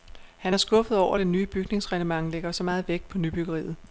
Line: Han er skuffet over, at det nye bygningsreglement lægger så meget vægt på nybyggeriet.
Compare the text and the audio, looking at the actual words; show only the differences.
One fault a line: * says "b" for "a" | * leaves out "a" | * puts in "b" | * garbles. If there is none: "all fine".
all fine